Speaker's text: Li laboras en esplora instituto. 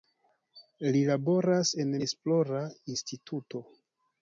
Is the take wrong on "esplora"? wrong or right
right